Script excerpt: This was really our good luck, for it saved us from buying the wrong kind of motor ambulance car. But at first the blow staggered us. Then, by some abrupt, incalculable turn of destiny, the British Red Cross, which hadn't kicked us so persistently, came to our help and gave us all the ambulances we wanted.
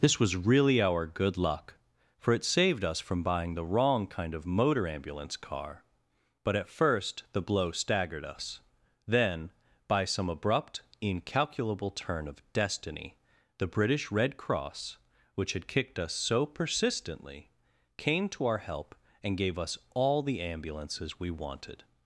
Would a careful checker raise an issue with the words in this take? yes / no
yes